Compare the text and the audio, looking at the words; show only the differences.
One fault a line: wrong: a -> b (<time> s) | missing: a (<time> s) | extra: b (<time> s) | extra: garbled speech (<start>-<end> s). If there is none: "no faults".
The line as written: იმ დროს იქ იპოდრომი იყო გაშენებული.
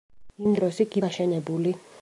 missing: იპოდრომი იყო (0.9 s)